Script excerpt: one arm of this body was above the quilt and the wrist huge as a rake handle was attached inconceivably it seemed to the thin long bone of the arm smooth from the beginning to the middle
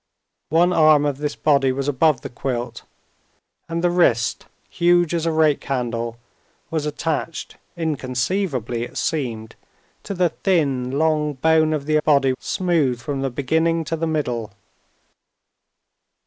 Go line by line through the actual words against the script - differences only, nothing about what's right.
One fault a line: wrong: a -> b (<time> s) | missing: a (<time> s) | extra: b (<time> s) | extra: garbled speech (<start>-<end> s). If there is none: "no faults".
wrong: arm -> body (12.0 s)